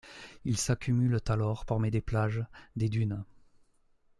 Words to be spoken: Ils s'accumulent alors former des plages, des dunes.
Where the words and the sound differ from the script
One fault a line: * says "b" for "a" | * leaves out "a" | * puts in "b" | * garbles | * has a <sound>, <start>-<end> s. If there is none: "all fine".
all fine